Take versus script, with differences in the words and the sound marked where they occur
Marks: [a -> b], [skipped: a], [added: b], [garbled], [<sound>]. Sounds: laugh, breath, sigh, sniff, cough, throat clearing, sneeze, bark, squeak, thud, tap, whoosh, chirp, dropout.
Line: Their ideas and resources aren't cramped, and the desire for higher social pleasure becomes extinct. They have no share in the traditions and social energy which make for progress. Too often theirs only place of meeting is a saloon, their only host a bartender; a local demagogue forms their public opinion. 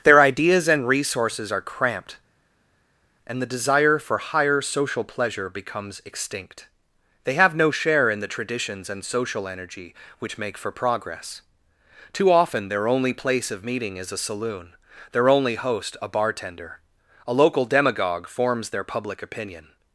Their ideas and resources [aren't -> are] cramped, and the desire for higher social pleasure becomes extinct. They have no share in the traditions and social energy which make for progress. Too often [theirs -> their] only place of meeting is a saloon, their only host a bartender; a local demagogue forms their public opinion.